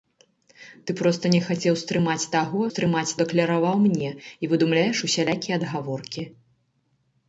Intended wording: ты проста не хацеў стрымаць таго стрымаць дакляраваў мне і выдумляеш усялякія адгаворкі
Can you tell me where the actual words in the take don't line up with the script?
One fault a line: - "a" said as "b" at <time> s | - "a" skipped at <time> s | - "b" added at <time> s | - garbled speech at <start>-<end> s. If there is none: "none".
none